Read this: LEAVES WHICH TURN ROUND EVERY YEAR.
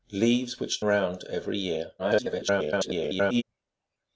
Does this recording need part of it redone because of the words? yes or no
yes